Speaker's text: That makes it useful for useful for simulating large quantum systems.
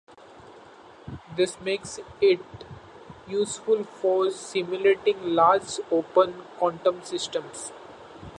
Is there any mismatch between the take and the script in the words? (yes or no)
yes